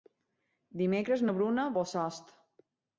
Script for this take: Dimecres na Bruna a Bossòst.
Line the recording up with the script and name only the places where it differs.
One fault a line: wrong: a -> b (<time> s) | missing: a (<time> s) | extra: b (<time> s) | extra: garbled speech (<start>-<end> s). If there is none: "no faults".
no faults